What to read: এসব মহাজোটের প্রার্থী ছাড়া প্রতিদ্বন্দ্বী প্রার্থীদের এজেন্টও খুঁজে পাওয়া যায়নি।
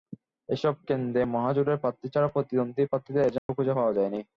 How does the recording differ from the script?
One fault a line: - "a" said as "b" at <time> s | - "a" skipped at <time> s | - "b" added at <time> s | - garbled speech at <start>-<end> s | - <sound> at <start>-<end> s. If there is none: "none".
- "কেন্দ্রে" added at 0.9 s
- dropout at 3.4-3.5 s